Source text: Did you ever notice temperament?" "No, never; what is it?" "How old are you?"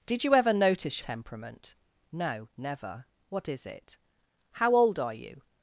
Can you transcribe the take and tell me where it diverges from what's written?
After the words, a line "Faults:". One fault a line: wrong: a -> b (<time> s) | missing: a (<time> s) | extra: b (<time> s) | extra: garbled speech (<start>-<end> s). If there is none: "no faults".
Did you ever notice temperament?" "No, never; what is it?" "How old are you?"
Faults:
no faults